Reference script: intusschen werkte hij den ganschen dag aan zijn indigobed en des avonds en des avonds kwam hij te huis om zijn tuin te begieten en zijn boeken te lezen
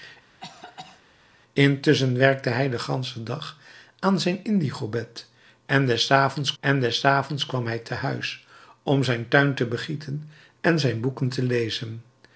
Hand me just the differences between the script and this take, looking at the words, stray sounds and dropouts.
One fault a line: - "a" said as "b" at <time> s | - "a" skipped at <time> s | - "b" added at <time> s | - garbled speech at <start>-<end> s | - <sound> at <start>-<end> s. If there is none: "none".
- cough at 0.4-1.0 s